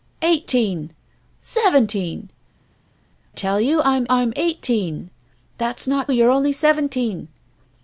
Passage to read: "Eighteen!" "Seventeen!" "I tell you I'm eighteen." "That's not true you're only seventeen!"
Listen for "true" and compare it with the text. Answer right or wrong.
wrong